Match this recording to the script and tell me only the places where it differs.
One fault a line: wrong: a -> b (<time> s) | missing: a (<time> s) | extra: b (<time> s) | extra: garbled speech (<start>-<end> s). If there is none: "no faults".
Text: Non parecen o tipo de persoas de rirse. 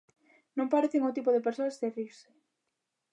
no faults